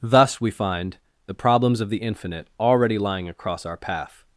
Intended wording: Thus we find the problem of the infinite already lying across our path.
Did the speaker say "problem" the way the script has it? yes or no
no